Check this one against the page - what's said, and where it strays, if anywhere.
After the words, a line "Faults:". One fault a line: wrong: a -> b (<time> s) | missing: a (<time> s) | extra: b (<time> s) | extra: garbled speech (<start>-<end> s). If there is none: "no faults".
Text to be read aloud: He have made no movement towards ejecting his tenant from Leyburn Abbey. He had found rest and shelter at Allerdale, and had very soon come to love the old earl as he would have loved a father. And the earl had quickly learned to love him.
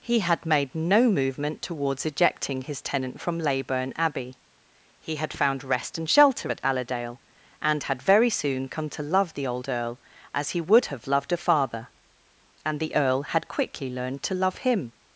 He had made no movement towards ejecting his tenant from Leyburn Abbey. He had found rest and shelter at Allerdale, and had very soon come to love the old earl as he would have loved a father. And the earl had quickly learned to love him.
Faults:
wrong: have -> had (0.2 s)